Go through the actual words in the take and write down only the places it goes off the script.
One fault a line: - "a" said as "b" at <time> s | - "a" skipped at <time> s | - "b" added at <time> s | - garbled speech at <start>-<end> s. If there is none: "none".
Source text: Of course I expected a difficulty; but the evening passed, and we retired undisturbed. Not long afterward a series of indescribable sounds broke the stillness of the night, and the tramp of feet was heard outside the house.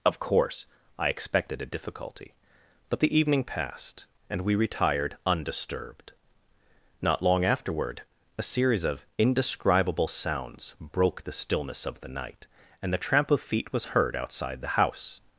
none